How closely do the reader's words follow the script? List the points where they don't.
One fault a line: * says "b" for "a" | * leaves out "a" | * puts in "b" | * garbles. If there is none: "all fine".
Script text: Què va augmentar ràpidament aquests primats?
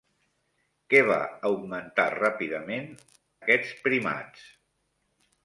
all fine